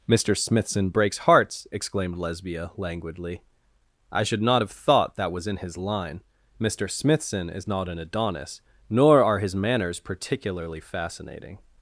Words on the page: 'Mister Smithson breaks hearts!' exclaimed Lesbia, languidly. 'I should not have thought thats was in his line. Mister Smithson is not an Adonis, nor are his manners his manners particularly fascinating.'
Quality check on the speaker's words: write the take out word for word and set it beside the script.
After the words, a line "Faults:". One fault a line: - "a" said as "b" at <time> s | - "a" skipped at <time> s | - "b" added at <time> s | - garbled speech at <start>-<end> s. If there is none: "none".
'Mister Smithson breaks hearts!' exclaimed Lesbia, languidly. 'I should not have thought that was in his line. Mister Smithson is not an Adonis, nor are his manners particularly fascinating.'
Faults:
- "thats" said as "that" at 5.2 s
- "his manners" skipped at 10.0 s